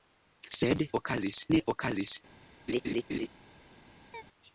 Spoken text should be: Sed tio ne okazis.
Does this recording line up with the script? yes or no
no